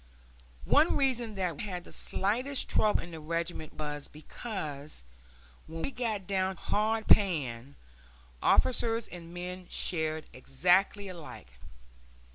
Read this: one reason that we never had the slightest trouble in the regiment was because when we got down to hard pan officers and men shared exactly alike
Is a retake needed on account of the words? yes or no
yes